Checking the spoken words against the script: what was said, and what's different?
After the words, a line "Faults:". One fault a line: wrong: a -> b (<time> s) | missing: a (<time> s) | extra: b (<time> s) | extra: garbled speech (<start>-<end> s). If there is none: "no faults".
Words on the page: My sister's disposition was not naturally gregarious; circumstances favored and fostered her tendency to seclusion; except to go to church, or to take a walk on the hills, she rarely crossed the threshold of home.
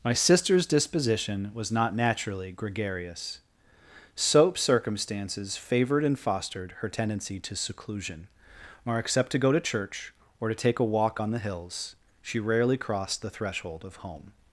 My sister's disposition was not naturally gregarious; soap circumstances favored and fostered her tendency to seclusion; or except to go to church, or to take a walk on the hills, she rarely crossed the threshold of home.
Faults:
extra: soap (4.2 s)
extra: or (8.8 s)